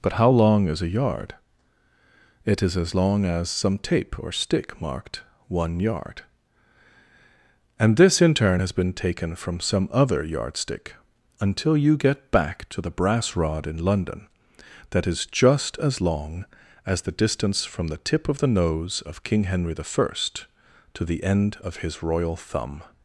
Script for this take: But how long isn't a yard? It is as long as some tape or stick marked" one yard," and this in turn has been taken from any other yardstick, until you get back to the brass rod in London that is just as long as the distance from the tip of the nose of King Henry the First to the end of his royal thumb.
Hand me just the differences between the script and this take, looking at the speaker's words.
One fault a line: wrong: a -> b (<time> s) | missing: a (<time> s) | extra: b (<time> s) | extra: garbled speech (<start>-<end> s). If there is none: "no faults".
wrong: isn't -> is (0.7 s)
wrong: any -> some (9.6 s)